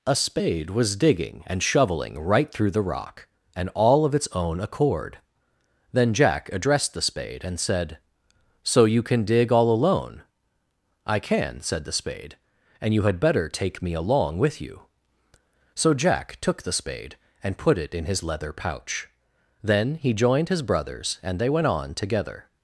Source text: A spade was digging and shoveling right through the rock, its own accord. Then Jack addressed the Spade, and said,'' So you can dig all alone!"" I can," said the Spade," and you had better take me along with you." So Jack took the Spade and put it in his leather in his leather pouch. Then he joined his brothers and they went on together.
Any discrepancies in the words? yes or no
yes